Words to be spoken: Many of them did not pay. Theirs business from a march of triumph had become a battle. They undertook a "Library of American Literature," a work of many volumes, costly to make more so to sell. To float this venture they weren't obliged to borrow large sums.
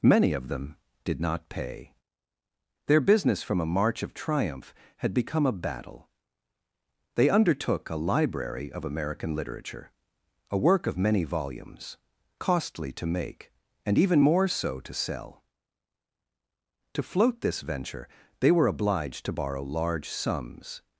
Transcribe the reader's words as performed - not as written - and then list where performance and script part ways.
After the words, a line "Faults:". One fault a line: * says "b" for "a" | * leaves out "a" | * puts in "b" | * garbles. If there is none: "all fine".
Many of them did not pay. Their business from a march of triumph had become a battle. They undertook a "Library of American Literature," a work of many volumes, costly to make and even more so to sell. To float this venture they were obliged to borrow large sums.
Faults:
* says "Their" for "Theirs"
* puts in "and even"
* says "were" for "weren't"